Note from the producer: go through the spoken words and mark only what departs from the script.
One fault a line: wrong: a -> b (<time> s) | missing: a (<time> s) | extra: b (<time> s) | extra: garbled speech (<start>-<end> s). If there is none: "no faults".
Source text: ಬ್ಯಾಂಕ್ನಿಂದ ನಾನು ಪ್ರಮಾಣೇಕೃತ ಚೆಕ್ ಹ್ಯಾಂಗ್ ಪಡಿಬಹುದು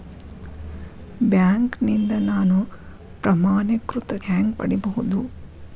missing: ಚೆಕ್ (4.1 s)